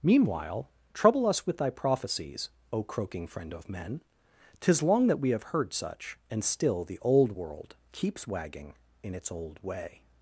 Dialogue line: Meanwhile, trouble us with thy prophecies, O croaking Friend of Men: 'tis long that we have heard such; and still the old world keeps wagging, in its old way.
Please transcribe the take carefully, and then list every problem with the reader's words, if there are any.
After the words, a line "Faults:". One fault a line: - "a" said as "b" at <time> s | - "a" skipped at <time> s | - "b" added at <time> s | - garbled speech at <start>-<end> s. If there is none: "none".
Meanwhile, trouble us with thy prophecies, O croaking Friend of Men: 'tis long that we have heard such; and still the old world keeps wagging, in its old way.
Faults:
none